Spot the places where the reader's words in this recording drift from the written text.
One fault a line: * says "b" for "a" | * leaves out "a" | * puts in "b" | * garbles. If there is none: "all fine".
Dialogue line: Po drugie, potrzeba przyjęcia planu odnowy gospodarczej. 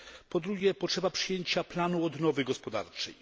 all fine